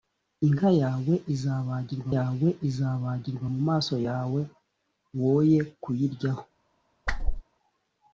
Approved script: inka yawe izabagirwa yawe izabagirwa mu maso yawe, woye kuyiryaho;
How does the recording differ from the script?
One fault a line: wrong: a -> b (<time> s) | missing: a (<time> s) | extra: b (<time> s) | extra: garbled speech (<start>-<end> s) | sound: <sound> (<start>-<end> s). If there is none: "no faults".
sound: whoosh (7.1-7.4 s)